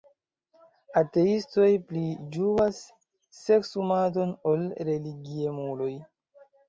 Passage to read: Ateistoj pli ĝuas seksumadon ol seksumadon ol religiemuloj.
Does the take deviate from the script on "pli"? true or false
false